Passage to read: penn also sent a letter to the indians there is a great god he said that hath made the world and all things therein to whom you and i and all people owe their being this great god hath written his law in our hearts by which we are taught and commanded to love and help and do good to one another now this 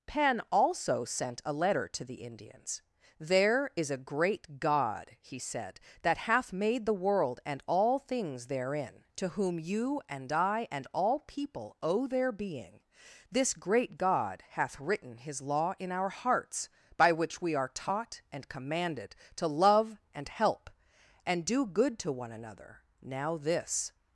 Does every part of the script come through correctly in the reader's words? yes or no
yes